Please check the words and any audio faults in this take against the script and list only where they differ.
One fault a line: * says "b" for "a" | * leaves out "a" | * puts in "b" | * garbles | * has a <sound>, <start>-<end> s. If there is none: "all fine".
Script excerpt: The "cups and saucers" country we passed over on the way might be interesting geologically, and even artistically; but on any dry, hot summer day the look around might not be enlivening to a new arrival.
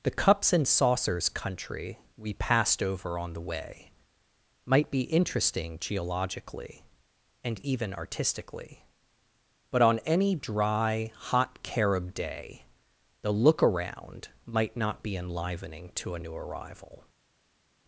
* says "carob" for "summer"